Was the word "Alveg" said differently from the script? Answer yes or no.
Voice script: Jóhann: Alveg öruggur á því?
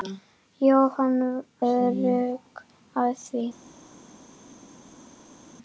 yes